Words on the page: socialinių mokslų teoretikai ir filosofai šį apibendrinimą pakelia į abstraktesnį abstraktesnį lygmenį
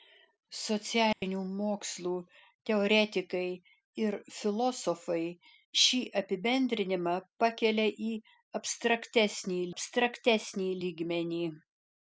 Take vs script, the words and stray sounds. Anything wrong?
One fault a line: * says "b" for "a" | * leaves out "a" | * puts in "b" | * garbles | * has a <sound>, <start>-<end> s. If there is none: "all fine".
* has a dropout, 1.1-1.2 s